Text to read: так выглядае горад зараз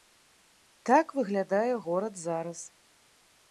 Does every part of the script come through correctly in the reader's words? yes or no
yes